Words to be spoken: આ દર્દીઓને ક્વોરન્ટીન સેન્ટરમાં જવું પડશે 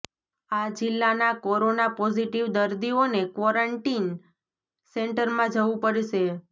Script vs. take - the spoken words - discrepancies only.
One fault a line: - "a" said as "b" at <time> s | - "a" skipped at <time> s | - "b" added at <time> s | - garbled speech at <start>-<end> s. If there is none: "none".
- "જિલ્લાના કોરોના પોઝિટિવ" added at 0.8 s